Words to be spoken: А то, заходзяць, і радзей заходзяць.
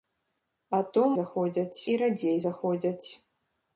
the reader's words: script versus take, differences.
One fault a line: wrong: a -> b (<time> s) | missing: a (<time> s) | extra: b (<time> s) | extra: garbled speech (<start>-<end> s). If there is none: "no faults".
no faults